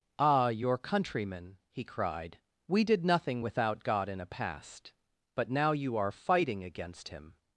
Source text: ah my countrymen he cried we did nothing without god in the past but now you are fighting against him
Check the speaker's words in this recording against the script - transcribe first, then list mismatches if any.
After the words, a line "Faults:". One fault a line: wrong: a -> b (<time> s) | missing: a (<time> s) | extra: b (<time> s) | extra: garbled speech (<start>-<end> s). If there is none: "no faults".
ah your countrymen he cried we did nothing without god in a past but now you are fighting against him
Faults:
wrong: my -> your (0.5 s)
wrong: the -> a (4.2 s)